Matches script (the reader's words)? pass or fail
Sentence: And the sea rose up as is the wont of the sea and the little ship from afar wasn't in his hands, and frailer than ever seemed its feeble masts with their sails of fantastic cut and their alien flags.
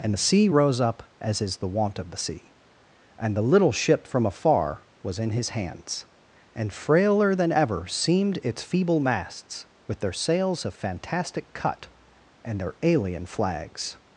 fail